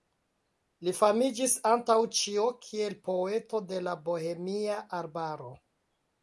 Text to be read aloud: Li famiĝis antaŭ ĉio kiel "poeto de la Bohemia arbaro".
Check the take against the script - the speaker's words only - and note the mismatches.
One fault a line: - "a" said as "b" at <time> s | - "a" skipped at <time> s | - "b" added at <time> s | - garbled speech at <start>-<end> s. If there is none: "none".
none